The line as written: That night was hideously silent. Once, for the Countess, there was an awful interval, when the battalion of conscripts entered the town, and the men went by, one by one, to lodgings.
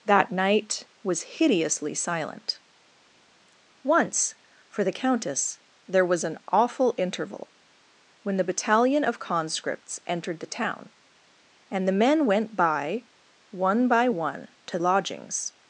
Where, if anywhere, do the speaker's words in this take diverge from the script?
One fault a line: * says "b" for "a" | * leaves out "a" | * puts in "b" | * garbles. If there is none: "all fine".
all fine